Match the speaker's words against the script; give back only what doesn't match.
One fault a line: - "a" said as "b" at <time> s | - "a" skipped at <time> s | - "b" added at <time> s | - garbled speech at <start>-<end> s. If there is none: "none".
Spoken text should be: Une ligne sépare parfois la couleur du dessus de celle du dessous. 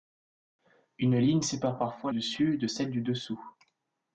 - "la couleur du" skipped at 2.1 s